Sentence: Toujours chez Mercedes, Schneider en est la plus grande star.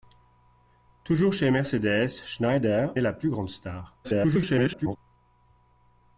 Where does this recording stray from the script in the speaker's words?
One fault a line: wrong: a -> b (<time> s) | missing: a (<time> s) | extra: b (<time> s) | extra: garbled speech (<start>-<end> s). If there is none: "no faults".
missing: en (3.0 s)
extra: garbled speech (4.0-5.0 s)